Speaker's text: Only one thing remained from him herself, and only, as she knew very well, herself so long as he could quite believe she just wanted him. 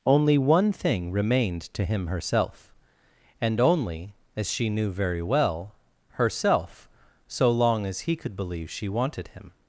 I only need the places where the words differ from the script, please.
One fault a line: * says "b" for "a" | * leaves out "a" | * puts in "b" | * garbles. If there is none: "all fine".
* says "to" for "from"
* leaves out "quite"
* leaves out "just"